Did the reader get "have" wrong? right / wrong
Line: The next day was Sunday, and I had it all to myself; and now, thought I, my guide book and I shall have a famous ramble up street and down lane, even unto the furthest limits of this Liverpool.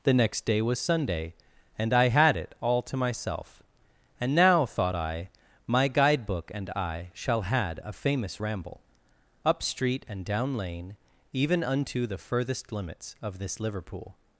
wrong